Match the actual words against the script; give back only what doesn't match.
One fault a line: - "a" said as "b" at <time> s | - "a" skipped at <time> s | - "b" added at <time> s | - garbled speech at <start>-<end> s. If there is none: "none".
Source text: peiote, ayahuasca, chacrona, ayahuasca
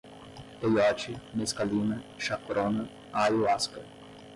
- "ayahuasca" said as "mescalina" at 1.4 s